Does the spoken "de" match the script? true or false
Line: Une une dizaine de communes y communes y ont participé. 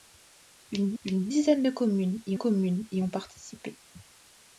true